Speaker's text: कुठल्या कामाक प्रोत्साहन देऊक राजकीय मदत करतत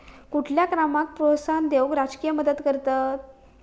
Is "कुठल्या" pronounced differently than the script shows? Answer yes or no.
no